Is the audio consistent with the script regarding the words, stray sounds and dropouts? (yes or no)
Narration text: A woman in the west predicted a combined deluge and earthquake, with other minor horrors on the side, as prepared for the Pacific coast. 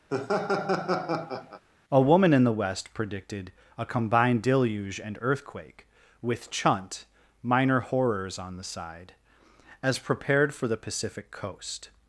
no